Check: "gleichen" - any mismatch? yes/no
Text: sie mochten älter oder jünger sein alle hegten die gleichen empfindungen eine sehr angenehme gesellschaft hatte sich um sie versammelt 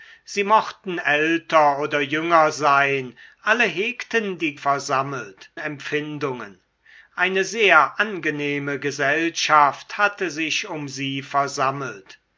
yes